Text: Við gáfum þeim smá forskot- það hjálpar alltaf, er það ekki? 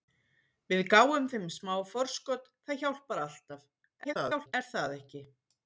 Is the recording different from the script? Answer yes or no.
yes